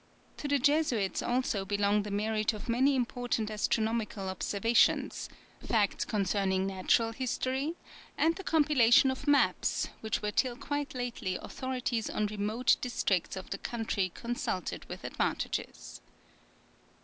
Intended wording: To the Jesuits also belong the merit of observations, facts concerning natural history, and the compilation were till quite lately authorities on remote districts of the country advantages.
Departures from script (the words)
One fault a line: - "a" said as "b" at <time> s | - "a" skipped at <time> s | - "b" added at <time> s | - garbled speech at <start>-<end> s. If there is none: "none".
- "many important astronomical" added at 2.7 s
- "of maps which" added at 9.1 s
- "consulted with" added at 14.1 s